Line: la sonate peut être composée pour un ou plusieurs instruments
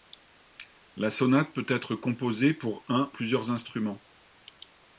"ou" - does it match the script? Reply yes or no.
no